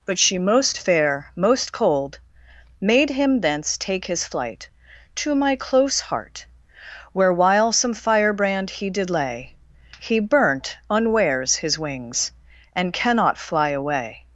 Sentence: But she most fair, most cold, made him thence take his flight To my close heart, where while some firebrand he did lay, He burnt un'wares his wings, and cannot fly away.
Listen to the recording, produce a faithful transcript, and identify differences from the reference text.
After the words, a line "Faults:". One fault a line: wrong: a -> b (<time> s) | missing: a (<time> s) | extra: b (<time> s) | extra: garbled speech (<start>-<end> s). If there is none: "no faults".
But she most fair, most cold, made him thence take his flight To my close heart, where while some firebrand he did lay, He burnt un'wares his wings, and cannot fly away.
Faults:
no faults